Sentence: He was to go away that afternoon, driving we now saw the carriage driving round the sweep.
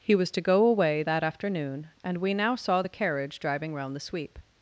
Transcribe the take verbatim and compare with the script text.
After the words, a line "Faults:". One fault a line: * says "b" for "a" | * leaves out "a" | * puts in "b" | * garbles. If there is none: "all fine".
He was to go away that afternoon, and we now saw the carriage driving round the sweep.
Faults:
* says "and" for "driving"